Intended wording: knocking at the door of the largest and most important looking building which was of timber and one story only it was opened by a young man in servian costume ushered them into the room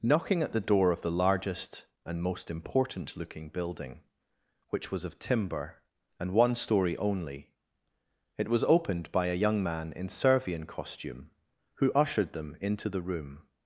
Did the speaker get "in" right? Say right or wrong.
right